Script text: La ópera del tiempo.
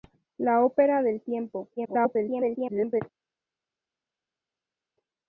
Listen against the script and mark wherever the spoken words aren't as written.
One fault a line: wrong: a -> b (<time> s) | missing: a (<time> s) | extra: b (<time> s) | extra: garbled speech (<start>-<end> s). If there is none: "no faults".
extra: garbled speech (1.8-3.0 s)